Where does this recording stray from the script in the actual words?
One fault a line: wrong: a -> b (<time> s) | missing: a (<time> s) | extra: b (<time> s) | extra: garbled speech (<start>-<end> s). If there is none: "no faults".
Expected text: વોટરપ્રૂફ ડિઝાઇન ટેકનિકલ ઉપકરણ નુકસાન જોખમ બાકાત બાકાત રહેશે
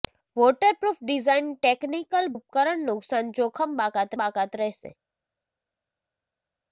no faults